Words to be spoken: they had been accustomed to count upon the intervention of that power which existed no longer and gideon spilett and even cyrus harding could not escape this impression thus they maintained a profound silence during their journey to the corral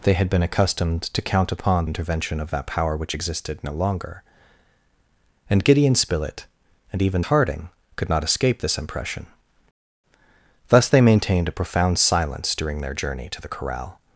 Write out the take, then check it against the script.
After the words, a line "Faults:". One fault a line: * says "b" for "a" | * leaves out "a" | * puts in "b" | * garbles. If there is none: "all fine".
they had been accustomed to count upon intervention of that power which existed no longer and gideon spilett and even harding could not escape this impression thus they maintained a profound silence during their journey to the corral
Faults:
* leaves out "the"
* leaves out "cyrus"